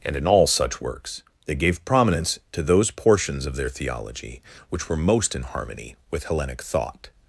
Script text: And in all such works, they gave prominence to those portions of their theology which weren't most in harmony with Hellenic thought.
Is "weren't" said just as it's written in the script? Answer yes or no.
no